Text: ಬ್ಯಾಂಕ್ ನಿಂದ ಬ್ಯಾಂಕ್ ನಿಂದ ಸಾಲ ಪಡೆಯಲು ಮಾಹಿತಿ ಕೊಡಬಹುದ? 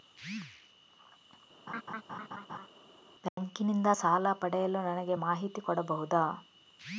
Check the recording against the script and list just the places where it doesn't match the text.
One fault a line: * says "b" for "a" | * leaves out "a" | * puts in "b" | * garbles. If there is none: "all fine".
* leaves out "ಬ್ಯಾಂಕ್ ನಿಂದ"
* puts in "ನನಗೆ"